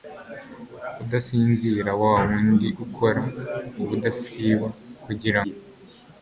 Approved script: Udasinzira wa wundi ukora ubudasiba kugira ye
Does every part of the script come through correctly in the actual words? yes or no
yes